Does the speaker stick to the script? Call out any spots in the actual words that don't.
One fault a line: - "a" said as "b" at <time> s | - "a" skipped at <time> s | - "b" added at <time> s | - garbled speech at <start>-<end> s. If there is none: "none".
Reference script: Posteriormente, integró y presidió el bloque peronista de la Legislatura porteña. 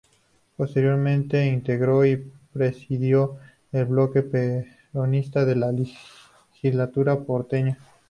none